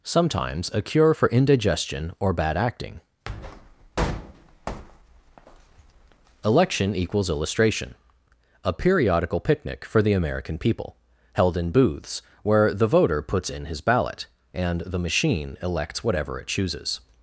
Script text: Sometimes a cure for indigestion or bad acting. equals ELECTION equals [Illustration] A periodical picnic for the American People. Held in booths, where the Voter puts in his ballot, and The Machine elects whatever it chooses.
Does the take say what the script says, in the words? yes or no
no